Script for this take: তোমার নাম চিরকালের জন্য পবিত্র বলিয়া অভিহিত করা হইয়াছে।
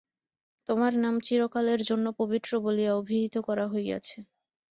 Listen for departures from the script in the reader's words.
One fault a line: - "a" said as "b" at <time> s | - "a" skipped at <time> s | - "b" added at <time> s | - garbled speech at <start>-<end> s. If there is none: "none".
none